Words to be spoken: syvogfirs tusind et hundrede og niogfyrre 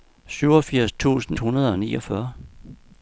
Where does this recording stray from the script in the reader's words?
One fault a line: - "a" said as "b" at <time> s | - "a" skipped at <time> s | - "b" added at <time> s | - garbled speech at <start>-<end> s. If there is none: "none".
- "et" skipped at 1.4 s